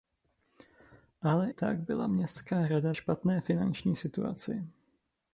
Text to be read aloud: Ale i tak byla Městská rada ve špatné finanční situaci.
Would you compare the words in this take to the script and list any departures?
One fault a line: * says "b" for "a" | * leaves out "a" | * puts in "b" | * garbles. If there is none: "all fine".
* leaves out "i"
* leaves out "ve"